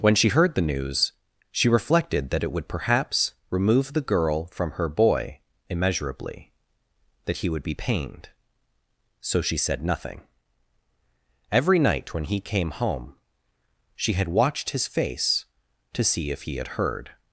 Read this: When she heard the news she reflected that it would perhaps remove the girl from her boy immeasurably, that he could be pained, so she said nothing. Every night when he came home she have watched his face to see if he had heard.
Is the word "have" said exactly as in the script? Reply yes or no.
no